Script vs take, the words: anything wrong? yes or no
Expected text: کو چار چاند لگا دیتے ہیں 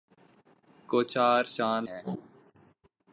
yes